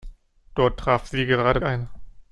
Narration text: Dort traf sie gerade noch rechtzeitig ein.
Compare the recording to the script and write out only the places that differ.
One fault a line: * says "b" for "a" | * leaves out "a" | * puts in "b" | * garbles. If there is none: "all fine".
* leaves out "noch rechtzeitig"